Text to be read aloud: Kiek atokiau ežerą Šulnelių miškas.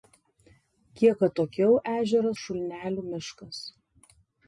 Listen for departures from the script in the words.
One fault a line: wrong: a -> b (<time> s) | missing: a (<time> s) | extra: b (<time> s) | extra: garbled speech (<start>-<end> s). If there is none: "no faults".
no faults